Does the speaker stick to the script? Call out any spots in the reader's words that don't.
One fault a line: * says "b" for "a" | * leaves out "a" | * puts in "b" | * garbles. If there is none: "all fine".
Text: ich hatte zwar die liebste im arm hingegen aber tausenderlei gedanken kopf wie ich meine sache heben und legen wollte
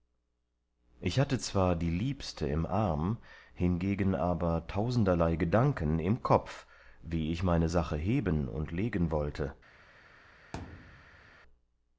* puts in "im"